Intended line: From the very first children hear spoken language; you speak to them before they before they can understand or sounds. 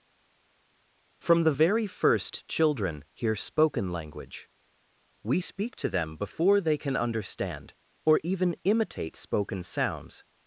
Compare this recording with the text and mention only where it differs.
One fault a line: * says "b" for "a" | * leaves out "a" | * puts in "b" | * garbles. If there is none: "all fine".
* says "we" for "you"
* leaves out "before they"
* puts in "even imitate spoken"